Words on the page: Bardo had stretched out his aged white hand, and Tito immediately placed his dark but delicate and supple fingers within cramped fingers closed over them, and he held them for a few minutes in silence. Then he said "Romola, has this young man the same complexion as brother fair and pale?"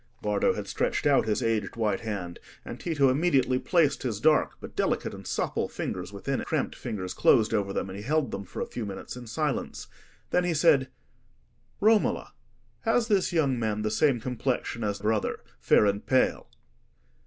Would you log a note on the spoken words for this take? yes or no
no